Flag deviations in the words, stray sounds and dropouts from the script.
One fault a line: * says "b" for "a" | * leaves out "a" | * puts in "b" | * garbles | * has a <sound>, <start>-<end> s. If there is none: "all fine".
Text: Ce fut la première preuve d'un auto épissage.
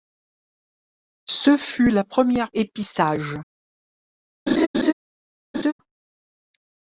* leaves out "preuve d'un auto"
* has a laugh, 4.5-4.9 s
* has a laugh, 5.5-5.7 s